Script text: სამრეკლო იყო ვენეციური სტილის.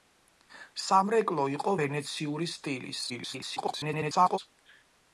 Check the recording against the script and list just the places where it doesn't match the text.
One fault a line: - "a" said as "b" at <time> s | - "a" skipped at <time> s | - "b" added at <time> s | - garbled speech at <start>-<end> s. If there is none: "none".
- garbled speech at 3.1-4.4 s